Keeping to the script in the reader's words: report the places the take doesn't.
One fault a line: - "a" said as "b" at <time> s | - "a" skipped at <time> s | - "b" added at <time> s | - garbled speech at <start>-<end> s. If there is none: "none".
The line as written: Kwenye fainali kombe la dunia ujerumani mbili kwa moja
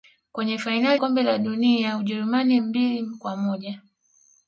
none